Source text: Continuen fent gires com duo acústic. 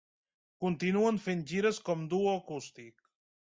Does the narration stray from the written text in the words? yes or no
no